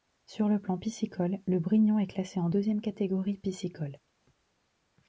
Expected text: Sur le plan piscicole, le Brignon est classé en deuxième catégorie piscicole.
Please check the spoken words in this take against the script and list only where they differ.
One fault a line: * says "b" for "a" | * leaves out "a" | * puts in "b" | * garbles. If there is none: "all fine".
all fine